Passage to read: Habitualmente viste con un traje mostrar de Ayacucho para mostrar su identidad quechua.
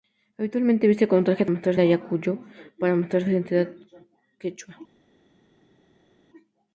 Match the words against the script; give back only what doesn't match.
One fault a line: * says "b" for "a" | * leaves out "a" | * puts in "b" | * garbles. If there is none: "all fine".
all fine